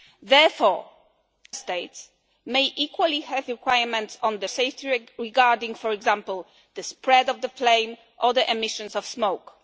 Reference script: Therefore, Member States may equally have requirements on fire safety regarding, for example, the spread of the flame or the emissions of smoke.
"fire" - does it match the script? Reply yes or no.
no